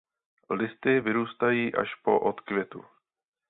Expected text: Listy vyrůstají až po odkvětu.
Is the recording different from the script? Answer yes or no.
no